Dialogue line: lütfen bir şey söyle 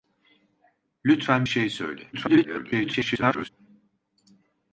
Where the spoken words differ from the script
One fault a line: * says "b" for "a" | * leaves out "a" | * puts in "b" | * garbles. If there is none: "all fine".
* leaves out "bir"
* garbles